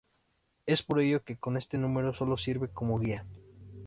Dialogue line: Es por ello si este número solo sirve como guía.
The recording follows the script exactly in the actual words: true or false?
false